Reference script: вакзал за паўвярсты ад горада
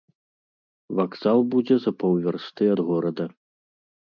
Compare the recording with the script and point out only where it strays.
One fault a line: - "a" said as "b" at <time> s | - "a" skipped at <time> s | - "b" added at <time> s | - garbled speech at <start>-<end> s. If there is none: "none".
- "будзе" added at 1.6 s